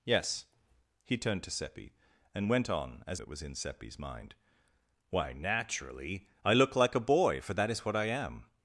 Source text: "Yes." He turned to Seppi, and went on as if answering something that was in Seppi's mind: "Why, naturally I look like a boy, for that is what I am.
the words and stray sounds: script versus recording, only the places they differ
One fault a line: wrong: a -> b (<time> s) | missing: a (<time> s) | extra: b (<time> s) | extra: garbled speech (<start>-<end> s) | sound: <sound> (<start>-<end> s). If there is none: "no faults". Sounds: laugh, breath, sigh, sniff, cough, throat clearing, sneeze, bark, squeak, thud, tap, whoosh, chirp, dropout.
missing: if answering something (3.2 s)